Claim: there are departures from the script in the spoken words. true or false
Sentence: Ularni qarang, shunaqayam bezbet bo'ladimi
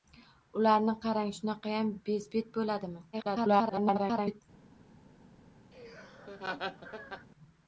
true